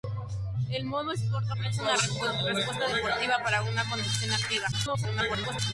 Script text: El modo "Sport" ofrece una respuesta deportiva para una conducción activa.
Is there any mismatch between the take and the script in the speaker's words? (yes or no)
yes